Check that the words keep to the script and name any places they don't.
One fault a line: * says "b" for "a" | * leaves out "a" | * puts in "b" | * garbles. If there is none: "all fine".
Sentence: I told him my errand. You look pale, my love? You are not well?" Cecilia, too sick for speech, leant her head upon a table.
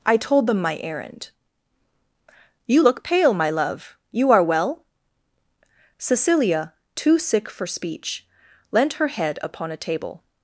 * says "them" for "him"
* leaves out "not"